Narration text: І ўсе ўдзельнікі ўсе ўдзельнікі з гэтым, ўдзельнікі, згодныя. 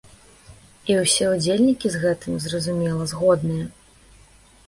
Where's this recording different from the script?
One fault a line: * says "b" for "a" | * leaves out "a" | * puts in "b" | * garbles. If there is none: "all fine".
* leaves out "ўсе ўдзельнікі"
* says "зразумела" for "ўдзельнікі"